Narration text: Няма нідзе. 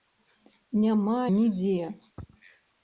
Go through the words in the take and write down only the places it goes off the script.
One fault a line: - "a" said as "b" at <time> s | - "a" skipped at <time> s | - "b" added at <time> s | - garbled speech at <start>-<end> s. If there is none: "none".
none